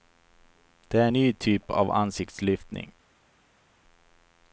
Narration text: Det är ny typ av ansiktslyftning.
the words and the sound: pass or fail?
pass